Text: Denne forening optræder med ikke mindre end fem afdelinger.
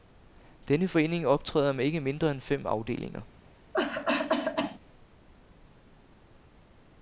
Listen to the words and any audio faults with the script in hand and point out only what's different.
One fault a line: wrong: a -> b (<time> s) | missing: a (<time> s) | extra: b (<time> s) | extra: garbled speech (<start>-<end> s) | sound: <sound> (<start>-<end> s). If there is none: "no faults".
sound: cough (3.7-4.8 s)